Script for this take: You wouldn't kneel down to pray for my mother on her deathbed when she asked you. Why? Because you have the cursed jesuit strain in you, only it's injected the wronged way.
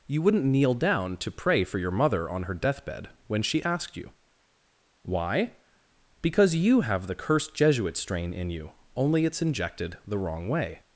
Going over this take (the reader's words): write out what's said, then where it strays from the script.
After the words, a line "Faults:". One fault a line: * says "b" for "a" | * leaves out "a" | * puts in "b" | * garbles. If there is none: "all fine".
You wouldn't kneel down to pray for your mother on her deathbed when she asked you. Why? Because you have the cursed jesuit strain in you, only it's injected the wrong way.
Faults:
* says "your" for "my"
* says "wrong" for "wronged"